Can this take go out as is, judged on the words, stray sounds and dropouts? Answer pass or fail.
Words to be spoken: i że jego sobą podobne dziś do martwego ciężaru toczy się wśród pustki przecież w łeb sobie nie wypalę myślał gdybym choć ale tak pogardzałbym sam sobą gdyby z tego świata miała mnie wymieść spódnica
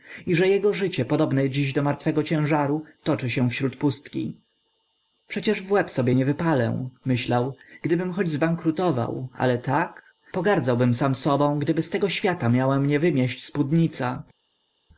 fail